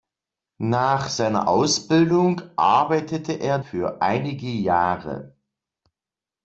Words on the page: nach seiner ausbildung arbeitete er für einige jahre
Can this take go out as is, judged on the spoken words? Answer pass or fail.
pass